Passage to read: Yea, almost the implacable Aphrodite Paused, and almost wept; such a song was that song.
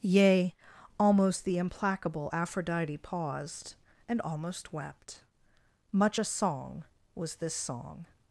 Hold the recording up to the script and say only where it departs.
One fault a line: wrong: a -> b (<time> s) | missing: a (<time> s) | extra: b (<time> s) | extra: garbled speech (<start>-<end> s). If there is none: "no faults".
wrong: such -> much (5.9 s)
wrong: that -> this (7.4 s)